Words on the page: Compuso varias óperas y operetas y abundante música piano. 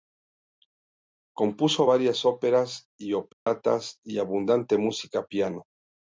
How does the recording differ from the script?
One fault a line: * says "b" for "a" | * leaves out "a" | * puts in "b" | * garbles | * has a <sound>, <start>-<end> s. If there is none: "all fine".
* has a dropout, 3.3-3.5 s